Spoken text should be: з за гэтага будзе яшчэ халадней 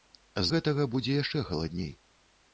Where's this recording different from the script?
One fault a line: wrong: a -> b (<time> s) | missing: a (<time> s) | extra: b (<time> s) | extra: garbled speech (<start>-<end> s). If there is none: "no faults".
missing: за (0.5 s)